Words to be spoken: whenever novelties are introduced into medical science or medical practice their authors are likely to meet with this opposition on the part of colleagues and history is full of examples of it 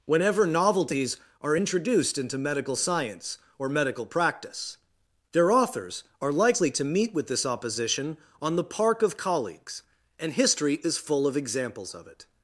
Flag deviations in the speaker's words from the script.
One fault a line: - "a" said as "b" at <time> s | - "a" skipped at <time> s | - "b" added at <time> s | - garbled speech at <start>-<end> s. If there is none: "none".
- "part" said as "park" at 8.6 s